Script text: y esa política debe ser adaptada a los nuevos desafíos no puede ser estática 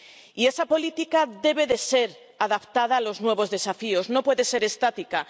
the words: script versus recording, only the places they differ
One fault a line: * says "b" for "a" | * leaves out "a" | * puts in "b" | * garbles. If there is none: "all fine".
all fine